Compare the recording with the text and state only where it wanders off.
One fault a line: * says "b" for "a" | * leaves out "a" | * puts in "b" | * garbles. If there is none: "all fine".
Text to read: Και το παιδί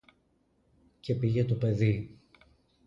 * puts in "πήγε"